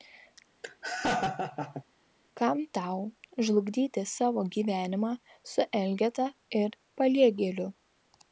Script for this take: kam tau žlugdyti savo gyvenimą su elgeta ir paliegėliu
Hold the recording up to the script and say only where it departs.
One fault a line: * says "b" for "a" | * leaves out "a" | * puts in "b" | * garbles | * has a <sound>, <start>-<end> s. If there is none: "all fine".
* has a laugh, 0.6-1.8 s